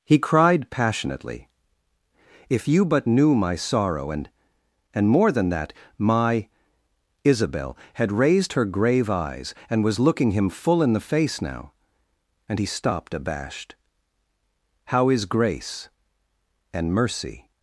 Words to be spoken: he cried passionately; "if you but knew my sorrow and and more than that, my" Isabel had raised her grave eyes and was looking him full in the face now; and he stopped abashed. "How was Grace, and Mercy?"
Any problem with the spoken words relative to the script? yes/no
yes